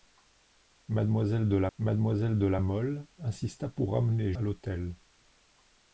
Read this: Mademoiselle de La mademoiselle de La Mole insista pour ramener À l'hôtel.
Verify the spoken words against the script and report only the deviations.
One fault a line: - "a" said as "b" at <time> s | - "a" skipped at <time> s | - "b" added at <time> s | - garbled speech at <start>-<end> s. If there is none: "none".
none